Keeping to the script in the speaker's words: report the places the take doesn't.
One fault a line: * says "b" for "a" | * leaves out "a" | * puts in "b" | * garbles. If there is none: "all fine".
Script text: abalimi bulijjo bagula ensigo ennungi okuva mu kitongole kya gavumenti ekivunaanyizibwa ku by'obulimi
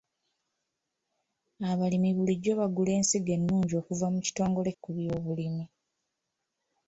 * leaves out "kya gavumenti ekivunaanyizibwa"